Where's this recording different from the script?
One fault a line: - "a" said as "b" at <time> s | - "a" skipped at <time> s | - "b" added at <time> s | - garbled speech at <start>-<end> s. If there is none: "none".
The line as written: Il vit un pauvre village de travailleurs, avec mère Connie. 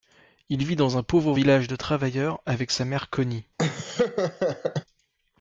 - "dans" added at 0.8 s
- "sa" added at 2.7 s